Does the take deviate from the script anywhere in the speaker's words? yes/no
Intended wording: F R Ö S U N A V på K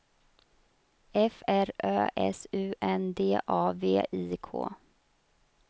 yes